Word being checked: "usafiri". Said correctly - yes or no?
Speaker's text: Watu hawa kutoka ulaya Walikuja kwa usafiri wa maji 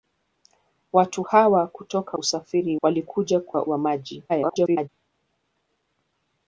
no